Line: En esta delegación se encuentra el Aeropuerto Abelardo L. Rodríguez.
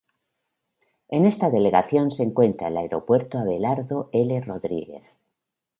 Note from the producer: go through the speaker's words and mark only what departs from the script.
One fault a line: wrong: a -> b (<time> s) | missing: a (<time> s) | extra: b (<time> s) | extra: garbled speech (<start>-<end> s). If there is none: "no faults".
no faults